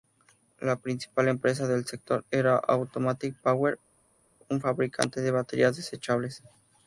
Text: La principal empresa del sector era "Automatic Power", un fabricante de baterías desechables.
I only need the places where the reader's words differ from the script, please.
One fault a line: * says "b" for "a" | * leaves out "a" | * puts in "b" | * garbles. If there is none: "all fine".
all fine